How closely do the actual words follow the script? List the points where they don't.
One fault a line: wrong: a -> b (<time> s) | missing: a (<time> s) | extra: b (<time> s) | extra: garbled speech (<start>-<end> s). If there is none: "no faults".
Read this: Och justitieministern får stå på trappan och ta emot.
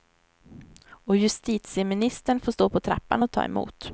no faults